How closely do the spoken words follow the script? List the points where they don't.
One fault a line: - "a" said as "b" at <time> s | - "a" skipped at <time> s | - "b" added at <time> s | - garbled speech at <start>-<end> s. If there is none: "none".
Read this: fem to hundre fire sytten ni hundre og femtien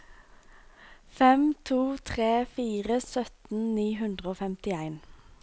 - "hundre" said as "tre" at 2.1 s